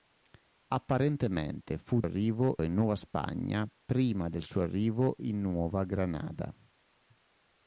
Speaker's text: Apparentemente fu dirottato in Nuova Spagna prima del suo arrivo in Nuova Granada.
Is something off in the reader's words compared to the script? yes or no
yes